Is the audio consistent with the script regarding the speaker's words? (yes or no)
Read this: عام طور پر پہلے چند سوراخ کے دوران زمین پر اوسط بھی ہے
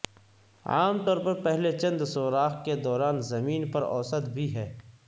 yes